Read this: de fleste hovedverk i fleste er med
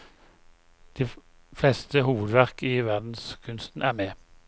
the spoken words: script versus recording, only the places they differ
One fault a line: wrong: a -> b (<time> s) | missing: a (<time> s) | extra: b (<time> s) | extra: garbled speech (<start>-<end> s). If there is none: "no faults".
wrong: fleste -> verdenskunsten (2.9 s)